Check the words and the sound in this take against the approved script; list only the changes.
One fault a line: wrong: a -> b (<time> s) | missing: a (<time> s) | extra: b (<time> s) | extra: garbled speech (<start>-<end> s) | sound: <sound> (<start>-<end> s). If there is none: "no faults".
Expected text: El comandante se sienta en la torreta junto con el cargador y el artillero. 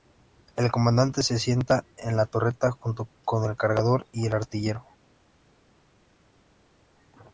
no faults